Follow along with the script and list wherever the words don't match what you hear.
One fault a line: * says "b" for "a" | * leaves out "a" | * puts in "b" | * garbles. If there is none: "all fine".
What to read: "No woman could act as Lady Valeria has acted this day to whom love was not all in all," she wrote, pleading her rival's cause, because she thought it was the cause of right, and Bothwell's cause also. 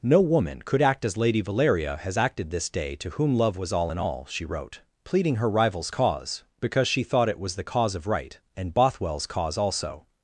* leaves out "not"